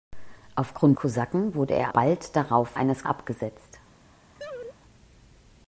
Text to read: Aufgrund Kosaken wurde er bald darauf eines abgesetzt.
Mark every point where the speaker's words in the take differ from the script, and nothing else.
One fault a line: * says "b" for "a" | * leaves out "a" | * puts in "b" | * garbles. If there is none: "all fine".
all fine